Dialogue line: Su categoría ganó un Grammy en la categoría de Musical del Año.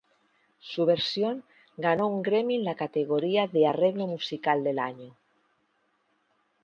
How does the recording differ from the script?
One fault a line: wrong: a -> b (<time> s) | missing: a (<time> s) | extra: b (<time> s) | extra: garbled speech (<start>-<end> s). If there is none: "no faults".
wrong: categoría -> versión (0.9 s)
extra: Arreglo (3.7 s)